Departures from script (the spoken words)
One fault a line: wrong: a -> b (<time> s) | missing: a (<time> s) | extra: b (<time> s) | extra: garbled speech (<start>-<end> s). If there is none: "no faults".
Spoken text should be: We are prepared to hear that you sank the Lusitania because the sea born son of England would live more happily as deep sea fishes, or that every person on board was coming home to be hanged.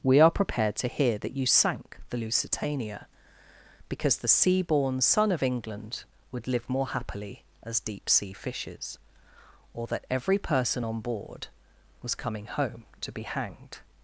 no faults